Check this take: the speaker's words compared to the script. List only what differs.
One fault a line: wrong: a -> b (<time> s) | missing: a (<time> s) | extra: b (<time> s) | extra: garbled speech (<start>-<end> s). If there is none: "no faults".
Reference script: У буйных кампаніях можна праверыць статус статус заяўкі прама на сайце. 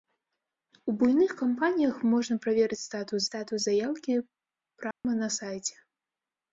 no faults